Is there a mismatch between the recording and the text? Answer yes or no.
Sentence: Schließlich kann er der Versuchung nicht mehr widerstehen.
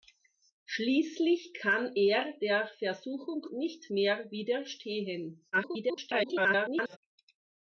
yes